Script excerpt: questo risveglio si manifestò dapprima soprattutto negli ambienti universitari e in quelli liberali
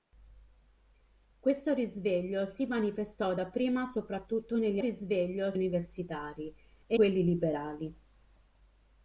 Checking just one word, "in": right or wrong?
wrong